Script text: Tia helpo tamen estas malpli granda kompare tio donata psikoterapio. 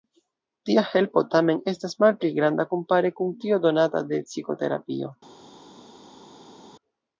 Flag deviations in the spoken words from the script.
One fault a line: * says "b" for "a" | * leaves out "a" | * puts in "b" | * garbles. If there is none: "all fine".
* puts in "kun"
* puts in "de"